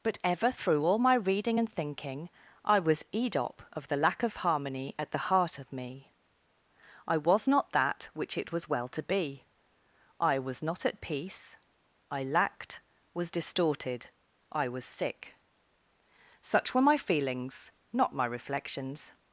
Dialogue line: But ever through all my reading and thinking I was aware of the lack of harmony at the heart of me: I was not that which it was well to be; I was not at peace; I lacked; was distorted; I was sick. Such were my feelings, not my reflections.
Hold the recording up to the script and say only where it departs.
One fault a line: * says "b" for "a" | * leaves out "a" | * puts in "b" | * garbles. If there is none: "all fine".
* says "edop" for "aware"